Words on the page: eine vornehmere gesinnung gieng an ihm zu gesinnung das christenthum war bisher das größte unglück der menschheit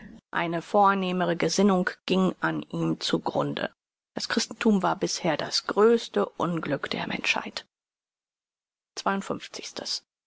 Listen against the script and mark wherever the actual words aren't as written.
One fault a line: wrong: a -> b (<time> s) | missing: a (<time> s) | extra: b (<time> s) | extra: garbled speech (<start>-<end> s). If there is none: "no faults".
wrong: gesinnung -> grunde (3.2 s)